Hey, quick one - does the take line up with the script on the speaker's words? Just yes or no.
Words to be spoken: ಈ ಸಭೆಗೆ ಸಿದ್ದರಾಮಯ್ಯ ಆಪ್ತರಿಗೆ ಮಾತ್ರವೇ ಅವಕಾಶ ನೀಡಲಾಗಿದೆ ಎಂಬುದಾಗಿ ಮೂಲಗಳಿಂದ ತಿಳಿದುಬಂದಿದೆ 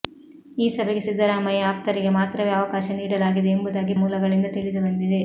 yes